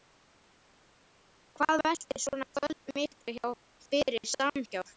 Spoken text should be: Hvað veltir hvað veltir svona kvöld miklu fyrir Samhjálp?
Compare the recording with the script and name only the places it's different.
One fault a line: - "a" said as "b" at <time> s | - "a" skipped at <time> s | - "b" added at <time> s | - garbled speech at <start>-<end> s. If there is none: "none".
- "hvað veltir" skipped at 2.2 s